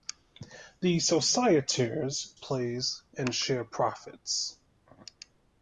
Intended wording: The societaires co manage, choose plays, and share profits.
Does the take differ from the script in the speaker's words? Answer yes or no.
yes